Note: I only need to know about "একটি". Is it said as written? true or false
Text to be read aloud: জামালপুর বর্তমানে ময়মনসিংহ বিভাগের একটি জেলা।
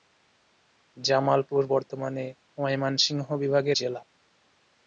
false